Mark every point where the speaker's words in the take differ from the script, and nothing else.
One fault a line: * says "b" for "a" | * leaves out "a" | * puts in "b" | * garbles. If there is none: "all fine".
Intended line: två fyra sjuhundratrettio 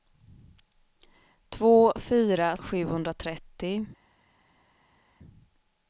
all fine